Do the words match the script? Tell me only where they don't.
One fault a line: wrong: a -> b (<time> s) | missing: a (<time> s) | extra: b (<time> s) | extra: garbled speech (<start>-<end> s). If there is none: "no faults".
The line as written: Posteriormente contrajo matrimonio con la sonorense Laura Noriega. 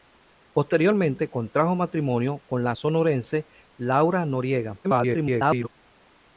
extra: garbled speech (4.8-5.7 s)